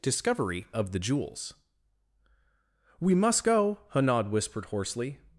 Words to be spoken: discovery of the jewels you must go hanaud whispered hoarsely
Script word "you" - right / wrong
wrong